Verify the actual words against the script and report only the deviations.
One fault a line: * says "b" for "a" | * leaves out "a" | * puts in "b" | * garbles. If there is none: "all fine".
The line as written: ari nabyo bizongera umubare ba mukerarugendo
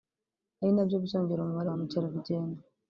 all fine